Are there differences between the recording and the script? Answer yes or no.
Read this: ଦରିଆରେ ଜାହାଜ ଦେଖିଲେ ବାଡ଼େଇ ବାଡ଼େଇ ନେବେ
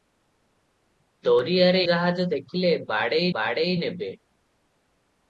no